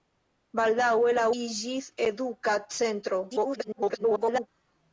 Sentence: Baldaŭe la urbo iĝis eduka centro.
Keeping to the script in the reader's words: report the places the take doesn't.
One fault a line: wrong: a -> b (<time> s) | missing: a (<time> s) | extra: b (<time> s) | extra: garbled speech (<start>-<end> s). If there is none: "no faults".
missing: urbo (1.2 s)
extra: garbled speech (3.3-4.5 s)